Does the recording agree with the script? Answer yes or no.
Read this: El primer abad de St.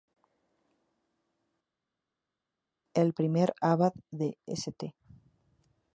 yes